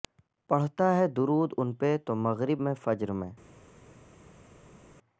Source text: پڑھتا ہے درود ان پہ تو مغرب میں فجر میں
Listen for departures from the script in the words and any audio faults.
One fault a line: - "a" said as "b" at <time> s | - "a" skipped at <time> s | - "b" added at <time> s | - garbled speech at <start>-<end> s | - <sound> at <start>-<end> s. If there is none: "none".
none